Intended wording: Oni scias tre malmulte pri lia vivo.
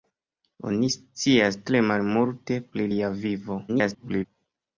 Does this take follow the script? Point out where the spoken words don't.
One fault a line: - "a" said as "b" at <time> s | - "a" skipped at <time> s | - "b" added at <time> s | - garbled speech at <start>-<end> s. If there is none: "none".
- garbled speech at 3.7-4.3 s